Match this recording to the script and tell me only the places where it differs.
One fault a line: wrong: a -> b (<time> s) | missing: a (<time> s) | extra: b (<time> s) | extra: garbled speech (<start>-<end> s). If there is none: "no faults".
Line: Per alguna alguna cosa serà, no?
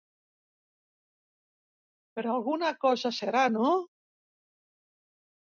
missing: alguna (2.7 s)